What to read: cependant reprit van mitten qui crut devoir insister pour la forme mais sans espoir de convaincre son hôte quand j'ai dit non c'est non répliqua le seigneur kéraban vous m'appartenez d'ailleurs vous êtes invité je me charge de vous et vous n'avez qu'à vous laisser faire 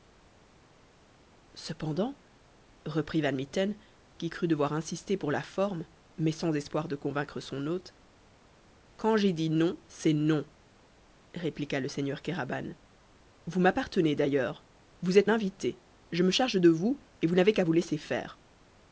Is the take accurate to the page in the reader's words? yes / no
yes